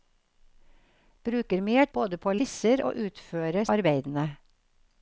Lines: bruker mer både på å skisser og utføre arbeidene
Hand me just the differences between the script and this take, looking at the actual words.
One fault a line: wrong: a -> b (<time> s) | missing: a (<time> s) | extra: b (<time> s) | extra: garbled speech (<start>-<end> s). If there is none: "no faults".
no faults